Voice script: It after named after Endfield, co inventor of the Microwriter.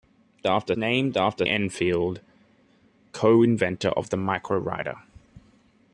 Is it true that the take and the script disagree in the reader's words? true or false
false